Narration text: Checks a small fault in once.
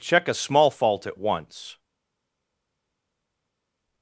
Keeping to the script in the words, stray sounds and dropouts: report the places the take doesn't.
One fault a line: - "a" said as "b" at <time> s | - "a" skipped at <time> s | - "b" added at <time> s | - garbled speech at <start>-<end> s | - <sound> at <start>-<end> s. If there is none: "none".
- "Checks" said as "Check" at 0.0 s
- "in" said as "at" at 1.1 s